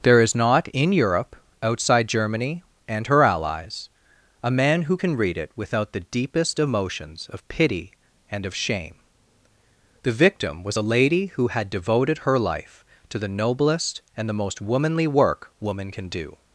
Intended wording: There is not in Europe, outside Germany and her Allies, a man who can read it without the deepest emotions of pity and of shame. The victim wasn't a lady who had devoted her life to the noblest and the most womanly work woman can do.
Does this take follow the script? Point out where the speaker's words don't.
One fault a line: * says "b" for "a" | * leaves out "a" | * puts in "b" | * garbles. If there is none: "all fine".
* says "was" for "wasn't"